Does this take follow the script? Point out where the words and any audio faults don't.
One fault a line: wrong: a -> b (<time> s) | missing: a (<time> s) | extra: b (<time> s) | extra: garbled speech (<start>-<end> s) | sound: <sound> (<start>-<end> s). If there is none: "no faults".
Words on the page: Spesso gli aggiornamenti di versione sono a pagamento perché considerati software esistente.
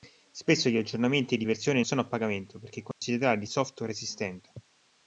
sound: dropout (2.9-3.0 s)